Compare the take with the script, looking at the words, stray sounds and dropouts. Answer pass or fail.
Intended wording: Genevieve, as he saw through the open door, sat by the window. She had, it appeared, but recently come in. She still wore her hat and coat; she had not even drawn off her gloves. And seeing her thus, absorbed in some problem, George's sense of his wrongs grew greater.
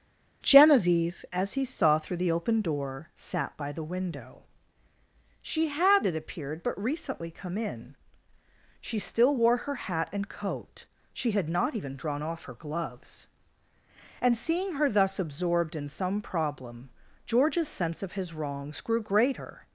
pass